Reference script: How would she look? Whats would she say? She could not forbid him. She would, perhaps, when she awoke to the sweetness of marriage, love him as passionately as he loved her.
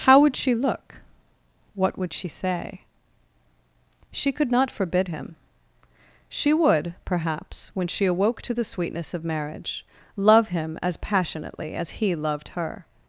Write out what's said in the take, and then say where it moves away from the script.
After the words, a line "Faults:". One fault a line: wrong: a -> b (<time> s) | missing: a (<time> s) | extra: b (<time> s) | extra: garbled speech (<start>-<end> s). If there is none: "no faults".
How would she look? What would she say? She could not forbid him. She would, perhaps, when she awoke to the sweetness of marriage, love him as passionately as he loved her.
Faults:
wrong: Whats -> What (1.8 s)